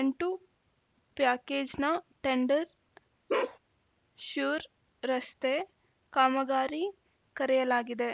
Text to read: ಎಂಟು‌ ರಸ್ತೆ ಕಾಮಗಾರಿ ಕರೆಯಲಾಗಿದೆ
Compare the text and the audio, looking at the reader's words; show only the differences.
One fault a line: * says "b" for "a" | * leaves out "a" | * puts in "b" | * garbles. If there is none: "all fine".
* puts in "ಪ್ಯಾಕೇಜ್‌ನ ಟೆಂಡರ್ ಶ್ಯೂರ್"